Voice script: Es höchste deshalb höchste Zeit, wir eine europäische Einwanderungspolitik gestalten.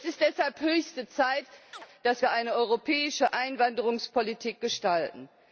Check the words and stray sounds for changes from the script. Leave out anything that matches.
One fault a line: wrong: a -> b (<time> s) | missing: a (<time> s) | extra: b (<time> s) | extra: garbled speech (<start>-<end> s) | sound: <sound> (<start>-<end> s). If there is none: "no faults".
wrong: höchste -> ist (0.1 s)
sound: chirp (1.7-1.9 s)
extra: dass (2.0 s)